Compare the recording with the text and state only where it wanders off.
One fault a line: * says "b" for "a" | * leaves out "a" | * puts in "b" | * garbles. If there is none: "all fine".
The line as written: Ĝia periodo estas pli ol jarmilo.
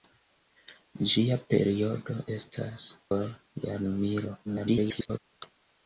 * leaves out "pli"
* garbles